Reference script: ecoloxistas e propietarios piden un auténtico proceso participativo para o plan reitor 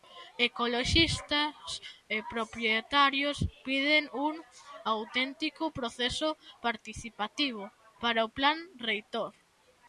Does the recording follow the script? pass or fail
pass